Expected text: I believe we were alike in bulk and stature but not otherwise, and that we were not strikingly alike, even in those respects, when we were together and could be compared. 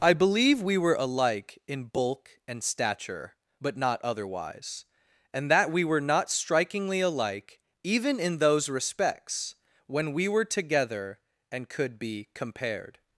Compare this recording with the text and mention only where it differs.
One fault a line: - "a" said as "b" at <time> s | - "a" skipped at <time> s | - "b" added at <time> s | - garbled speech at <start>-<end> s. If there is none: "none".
none